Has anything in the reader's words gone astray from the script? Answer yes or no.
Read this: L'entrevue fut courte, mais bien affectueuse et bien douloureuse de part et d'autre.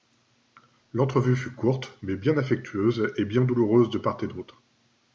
no